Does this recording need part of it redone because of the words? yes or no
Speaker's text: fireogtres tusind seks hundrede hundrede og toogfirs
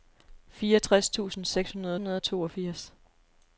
no